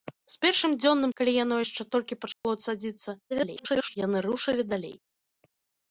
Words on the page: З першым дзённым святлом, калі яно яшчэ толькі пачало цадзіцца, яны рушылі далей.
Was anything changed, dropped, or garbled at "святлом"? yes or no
yes